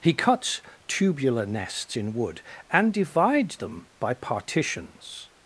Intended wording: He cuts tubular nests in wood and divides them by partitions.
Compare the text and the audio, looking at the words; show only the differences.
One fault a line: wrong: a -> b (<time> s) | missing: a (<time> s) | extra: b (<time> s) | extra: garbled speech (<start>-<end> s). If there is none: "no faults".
no faults